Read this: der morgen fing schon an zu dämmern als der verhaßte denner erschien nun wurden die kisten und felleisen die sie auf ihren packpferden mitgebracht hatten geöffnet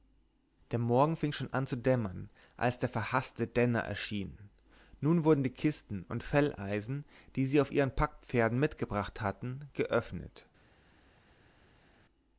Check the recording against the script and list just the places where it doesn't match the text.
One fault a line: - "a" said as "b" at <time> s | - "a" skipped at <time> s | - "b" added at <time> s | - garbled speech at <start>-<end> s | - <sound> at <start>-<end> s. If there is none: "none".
none